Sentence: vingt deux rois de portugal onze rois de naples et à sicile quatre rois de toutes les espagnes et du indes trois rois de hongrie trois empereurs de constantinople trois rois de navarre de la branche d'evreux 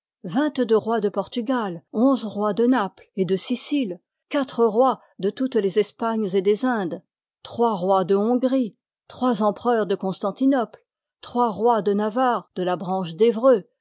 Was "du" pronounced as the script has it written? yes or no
no